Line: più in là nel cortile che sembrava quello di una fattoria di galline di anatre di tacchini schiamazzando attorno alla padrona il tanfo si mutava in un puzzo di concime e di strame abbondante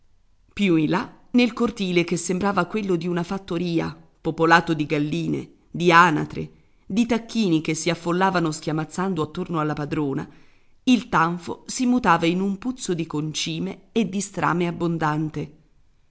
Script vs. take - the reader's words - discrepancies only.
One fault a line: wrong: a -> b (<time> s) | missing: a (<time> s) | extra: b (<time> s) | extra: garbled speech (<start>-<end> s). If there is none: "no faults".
extra: popolato (4.2 s)
extra: che si affollavano (7.6 s)